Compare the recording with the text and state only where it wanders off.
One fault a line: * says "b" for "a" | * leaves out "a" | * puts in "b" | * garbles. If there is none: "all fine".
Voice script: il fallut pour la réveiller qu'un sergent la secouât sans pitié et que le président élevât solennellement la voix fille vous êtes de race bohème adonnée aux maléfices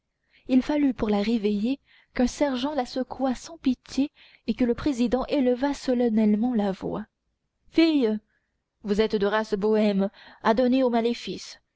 all fine